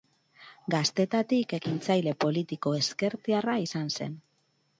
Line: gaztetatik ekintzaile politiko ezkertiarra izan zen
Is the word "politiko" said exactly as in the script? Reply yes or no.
yes